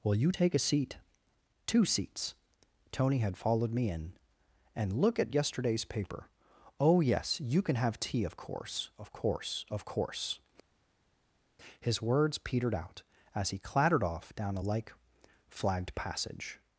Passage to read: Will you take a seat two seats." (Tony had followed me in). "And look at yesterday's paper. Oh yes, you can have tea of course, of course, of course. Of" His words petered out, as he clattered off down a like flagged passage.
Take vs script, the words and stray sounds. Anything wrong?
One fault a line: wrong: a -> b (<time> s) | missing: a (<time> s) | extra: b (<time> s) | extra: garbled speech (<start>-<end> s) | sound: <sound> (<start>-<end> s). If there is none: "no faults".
missing: Of (10.4 s)